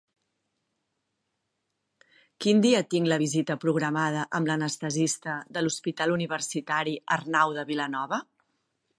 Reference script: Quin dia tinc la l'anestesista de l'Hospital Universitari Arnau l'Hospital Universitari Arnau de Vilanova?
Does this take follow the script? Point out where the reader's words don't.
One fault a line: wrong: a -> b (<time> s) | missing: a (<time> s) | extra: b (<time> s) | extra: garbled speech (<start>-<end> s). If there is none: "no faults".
wrong: l'anestesista de l'Hospital Universitari Arnau -> visita programada amb l'anestesista de (3.2 s)